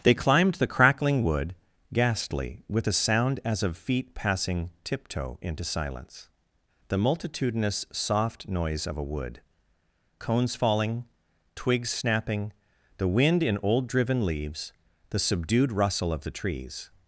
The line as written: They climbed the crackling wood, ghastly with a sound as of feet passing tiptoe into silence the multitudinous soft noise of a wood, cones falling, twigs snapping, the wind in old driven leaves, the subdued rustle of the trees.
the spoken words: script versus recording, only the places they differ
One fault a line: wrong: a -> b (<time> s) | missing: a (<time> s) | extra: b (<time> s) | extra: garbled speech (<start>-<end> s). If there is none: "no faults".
no faults